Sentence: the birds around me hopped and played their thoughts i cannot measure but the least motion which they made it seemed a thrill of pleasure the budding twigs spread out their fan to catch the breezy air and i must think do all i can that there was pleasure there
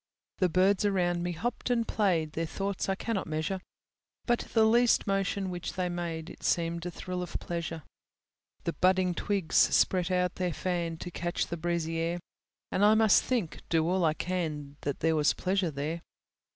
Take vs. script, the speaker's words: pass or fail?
pass